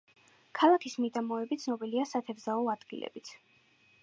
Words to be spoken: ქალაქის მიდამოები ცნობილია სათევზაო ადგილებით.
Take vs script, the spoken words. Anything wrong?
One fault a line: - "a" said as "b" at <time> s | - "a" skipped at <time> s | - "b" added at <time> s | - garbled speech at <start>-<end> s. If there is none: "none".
none